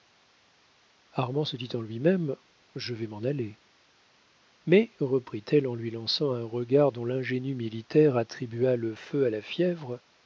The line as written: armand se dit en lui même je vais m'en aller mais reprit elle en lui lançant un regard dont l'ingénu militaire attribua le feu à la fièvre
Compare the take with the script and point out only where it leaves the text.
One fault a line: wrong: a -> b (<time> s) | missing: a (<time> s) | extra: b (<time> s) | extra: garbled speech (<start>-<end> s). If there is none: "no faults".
no faults